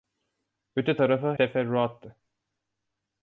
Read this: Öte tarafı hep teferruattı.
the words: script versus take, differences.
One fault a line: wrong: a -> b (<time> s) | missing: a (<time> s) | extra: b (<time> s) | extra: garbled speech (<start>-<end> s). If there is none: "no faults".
missing: hep (1.3 s)